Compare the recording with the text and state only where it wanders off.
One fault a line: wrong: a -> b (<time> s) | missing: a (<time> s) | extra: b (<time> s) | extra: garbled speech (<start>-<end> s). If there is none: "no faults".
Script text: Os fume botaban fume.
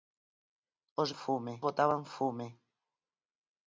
no faults